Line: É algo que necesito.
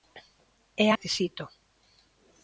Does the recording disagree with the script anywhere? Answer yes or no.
yes